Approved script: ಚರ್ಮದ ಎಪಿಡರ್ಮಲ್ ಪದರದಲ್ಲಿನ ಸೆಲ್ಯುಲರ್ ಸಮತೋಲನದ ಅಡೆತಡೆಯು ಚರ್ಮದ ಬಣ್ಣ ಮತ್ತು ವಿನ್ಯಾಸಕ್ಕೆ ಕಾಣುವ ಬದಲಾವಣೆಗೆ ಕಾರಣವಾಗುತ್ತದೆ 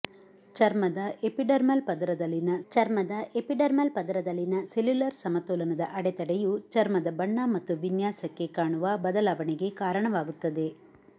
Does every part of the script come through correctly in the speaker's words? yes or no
no